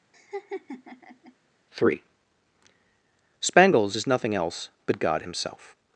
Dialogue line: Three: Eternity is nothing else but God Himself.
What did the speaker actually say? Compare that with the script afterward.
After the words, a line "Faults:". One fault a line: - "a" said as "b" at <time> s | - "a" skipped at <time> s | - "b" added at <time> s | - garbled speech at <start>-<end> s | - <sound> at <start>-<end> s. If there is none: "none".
Three: Spangles is nothing else but God Himself.
Faults:
- laugh at 0.1-1.3 s
- "Eternity" said as "Spangles" at 3.4 s